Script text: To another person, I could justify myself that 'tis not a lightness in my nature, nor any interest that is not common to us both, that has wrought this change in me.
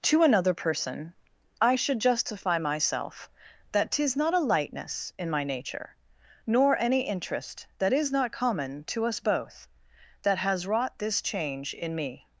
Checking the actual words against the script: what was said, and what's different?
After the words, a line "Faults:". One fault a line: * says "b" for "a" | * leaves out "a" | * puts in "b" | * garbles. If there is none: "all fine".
To another person, I should justify myself that 'tis not a lightness in my nature, nor any interest that is not common to us both, that has wrought this change in me.
Faults:
* says "should" for "could"